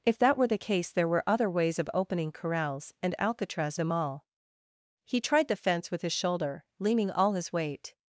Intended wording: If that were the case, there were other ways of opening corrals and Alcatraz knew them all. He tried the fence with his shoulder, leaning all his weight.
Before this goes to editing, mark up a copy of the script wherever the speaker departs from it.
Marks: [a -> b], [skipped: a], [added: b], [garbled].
If that were the case, there were other ways of opening corrals and Alcatraz [skipped: knew] them all. He tried the fence with his shoulder, leaning all his weight.